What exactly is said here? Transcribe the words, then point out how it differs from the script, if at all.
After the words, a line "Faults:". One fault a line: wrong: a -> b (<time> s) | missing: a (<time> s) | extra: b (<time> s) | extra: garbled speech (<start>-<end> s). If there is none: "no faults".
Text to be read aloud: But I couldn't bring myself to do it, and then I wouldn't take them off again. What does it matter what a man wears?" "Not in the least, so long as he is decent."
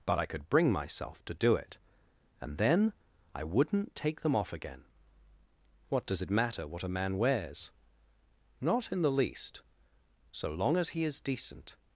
But I could bring myself to do it, and then I wouldn't take them off again. What does it matter what a man wears?" "Not in the least, so long as he is decent."
Faults:
wrong: couldn't -> could (0.2 s)